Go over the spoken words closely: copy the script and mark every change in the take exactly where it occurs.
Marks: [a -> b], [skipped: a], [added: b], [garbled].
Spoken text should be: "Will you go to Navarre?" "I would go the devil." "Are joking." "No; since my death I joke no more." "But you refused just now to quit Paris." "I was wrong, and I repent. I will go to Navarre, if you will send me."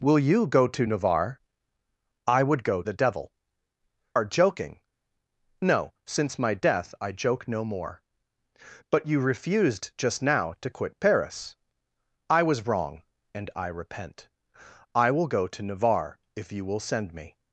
"Will you go to Navarre?" "I would go the devil." "Are joking." "No; since my death I joke no more." "But you refused just now to quit Paris." "I was wrong, and I repent. I will go to Navarre, if you will send me."